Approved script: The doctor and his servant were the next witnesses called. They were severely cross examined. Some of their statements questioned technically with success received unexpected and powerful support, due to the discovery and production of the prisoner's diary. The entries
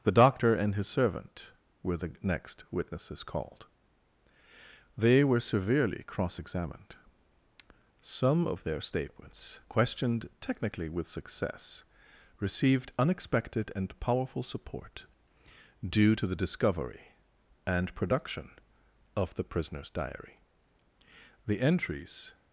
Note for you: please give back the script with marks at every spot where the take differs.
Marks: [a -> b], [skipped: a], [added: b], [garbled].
The doctor and his servant were the next witnesses called. They were severely cross examined. Some of their statements questioned technically with success received unexpected and powerful support, due to the discovery and production of the prisoner's diary. The entries